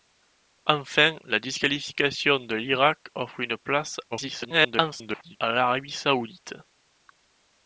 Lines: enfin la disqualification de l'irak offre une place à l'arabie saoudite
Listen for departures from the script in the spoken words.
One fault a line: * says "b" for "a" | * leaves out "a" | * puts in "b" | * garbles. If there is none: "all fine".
* garbles